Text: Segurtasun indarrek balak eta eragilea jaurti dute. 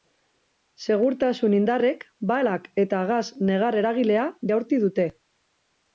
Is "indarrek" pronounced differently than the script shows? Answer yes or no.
no